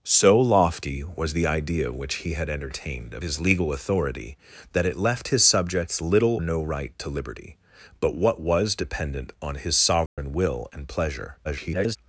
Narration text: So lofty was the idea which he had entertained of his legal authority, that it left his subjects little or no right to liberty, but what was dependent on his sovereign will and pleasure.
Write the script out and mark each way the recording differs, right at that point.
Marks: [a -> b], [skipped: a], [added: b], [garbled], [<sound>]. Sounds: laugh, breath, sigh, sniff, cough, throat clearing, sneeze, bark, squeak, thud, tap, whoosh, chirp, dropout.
So lofty was the idea which he had entertained of his legal authority, that it left his subjects little [skipped: or] no right to liberty, but what was dependent on his sovereign [dropout] will and pleasure. [garbled]